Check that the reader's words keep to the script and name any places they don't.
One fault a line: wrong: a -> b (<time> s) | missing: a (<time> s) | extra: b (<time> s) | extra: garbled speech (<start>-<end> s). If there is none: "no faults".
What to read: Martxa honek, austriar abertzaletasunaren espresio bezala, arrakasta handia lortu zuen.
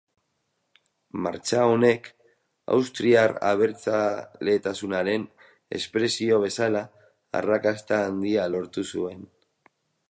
no faults